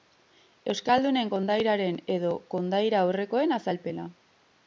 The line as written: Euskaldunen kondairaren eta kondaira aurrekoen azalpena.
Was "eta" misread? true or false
true